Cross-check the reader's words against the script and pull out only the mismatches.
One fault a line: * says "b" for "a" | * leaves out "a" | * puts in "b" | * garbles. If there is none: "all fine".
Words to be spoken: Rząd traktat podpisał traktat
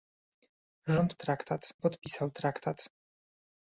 all fine